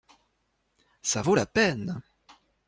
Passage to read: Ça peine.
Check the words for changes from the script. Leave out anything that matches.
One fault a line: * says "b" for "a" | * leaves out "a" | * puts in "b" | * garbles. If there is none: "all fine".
* puts in "vaut la"